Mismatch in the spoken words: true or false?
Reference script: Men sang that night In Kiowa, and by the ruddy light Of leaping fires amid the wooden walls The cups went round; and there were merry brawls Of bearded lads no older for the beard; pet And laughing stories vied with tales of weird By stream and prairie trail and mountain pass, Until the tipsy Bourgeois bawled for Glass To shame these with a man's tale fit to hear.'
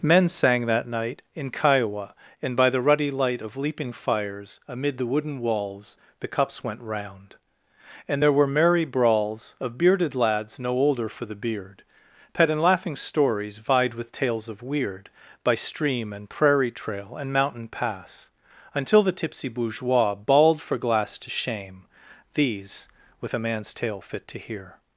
false